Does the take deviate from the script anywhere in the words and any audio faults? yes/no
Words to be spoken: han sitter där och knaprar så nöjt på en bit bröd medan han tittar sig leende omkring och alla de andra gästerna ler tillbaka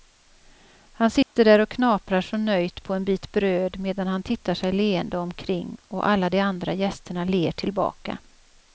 yes